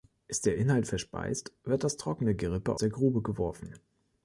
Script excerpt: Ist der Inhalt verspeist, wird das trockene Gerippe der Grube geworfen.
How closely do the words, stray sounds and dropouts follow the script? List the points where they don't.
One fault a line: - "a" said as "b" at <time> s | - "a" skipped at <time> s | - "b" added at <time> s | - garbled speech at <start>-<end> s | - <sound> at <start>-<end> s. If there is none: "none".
none